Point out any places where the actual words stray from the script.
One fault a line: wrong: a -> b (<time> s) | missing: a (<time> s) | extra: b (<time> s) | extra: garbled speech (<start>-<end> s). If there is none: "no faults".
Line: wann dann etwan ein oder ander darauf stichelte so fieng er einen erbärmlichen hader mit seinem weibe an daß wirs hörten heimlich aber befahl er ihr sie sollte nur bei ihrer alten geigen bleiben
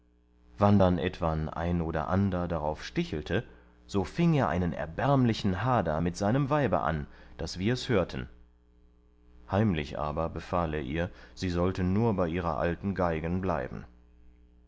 no faults